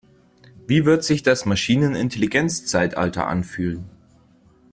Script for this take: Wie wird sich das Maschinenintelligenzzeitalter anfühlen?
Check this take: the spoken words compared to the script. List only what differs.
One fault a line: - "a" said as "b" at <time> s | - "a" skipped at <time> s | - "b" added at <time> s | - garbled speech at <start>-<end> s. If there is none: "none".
none